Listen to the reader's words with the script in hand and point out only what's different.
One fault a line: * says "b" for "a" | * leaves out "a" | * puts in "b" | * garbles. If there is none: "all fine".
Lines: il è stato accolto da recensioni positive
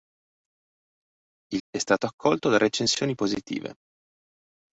all fine